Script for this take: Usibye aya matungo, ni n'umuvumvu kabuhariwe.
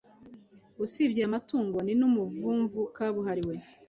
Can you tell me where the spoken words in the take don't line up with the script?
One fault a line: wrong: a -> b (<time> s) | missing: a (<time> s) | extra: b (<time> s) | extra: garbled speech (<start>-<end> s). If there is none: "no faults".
no faults